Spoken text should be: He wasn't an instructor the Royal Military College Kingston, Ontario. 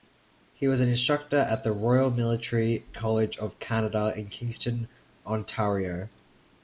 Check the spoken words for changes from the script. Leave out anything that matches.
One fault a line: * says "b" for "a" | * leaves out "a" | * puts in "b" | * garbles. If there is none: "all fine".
* says "was" for "wasn't"
* puts in "at"
* puts in "of Canada in"